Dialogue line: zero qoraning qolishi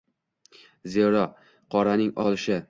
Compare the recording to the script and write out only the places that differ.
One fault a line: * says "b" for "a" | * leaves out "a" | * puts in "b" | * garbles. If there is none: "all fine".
all fine